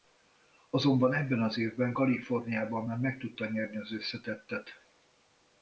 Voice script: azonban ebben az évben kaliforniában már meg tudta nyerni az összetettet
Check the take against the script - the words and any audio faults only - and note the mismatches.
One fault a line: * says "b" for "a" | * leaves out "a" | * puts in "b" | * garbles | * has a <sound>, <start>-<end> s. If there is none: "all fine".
all fine